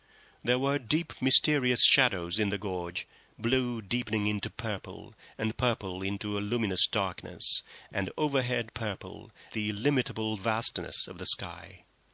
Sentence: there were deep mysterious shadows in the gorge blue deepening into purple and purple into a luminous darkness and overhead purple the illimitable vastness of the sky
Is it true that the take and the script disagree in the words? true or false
false